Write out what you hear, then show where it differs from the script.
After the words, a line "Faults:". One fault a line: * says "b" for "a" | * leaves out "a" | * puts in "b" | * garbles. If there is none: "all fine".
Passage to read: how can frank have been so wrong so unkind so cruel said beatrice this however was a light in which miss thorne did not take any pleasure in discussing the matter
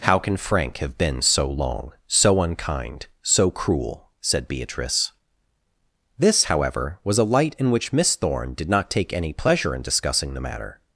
how can frank have been so long so unkind so cruel said beatrice this however was a light in which miss thorne did not take any pleasure in discussing the matter
Faults:
* says "long" for "wrong"